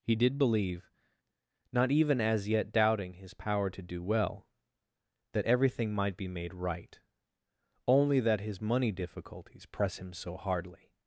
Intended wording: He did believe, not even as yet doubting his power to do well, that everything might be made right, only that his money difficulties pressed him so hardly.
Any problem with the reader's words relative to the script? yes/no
yes